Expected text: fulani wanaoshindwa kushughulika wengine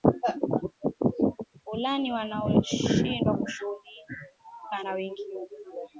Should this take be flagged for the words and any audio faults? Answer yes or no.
yes